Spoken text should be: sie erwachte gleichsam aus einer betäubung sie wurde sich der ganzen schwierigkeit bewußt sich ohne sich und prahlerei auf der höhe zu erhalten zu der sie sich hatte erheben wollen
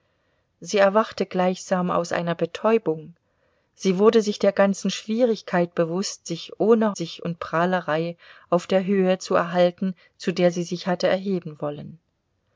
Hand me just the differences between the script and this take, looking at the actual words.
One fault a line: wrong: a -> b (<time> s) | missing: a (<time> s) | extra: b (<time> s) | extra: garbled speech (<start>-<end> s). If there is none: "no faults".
no faults